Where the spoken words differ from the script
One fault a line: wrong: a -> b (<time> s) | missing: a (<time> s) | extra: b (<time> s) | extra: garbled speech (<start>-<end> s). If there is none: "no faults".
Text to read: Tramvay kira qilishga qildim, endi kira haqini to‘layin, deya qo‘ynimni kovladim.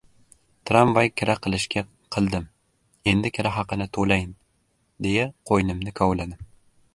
no faults